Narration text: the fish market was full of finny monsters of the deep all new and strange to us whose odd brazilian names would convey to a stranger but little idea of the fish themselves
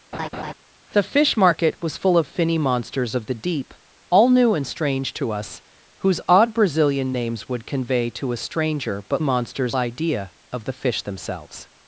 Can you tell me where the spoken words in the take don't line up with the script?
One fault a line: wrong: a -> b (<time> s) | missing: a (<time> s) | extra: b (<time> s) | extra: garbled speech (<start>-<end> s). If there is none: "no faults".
wrong: little -> monsters (9.2 s)